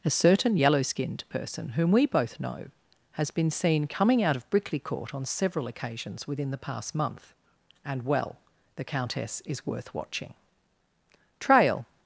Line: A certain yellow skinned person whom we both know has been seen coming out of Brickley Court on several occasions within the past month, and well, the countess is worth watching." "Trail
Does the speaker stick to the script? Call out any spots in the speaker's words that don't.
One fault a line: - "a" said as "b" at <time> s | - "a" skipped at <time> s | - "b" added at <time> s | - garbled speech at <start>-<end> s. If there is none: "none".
none